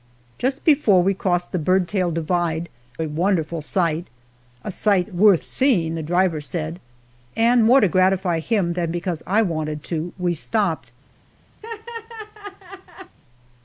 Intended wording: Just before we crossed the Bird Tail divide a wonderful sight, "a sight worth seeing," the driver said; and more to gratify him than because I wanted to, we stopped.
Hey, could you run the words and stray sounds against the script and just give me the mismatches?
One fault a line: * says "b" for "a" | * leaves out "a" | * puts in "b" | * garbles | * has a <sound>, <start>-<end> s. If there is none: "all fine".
* has a laugh, 11.6-13.2 s